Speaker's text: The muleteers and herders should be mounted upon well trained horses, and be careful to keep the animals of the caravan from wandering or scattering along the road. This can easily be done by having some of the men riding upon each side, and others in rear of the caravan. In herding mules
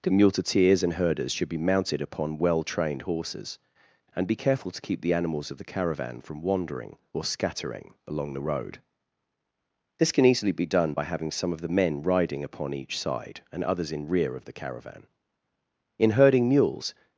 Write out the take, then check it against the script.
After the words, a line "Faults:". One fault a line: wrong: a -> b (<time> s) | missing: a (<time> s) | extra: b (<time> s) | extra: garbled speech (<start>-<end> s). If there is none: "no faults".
The muleteers and herders should be mounted upon well trained horses, and be careful to keep the animals of the caravan from wandering or scattering along the road. This can easily be done by having some of the men riding upon each side, and others in rear of the caravan. In herding mules
Faults:
no faults